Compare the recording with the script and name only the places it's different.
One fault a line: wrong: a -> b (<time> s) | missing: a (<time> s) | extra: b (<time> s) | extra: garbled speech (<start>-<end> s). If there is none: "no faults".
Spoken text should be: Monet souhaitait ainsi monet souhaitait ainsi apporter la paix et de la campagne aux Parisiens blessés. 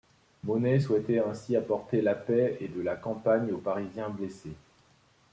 missing: monet souhaitait ainsi (1.6 s)